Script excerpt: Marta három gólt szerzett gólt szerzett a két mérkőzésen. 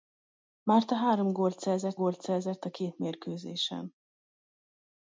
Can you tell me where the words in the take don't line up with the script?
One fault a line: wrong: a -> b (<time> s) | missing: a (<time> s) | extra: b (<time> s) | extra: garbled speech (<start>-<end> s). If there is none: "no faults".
no faults